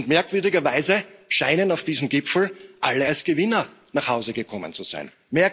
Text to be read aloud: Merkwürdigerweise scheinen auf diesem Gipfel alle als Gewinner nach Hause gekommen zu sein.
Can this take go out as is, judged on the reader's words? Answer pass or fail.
pass